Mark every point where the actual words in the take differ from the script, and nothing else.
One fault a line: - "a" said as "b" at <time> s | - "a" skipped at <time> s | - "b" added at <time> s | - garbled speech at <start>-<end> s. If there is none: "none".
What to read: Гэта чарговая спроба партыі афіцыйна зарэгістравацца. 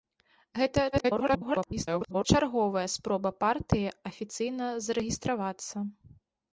- garbled speech at 0.9-2.2 s